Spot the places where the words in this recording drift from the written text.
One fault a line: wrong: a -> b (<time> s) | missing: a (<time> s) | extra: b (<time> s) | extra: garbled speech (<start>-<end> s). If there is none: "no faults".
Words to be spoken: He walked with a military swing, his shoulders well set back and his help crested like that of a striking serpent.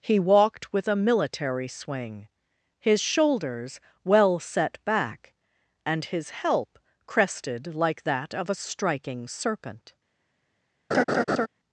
no faults